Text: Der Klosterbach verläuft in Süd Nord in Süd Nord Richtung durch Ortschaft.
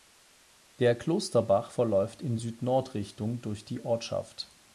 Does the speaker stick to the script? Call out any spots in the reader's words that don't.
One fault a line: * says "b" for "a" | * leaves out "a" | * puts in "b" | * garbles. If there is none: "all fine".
* leaves out "in Süd Nord"
* puts in "die"